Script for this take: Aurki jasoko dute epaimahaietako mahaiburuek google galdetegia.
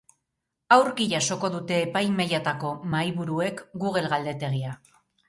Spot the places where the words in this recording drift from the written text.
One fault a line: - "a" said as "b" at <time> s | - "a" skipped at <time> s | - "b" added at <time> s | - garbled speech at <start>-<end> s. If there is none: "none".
none